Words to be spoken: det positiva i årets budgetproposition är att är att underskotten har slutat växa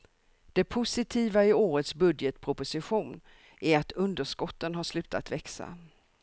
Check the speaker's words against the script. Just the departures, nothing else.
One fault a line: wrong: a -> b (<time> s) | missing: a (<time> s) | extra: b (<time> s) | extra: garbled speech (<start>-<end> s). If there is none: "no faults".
missing: är att (3.9 s)